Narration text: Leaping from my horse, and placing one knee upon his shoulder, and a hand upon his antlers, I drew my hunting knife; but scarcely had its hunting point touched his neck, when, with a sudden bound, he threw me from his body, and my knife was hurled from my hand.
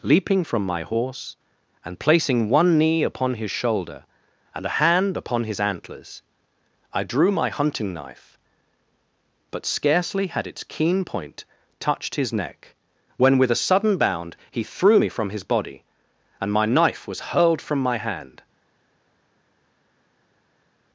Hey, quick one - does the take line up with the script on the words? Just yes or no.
no